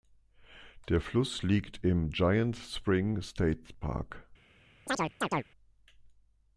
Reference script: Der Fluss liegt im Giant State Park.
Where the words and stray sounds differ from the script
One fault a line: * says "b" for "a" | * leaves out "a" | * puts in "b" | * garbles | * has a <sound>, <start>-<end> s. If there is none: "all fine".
* puts in "Spring"
* has a chirp, 4.9-5.4 s